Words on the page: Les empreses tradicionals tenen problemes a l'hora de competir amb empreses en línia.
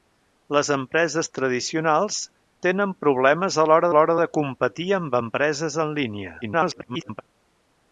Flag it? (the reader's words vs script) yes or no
yes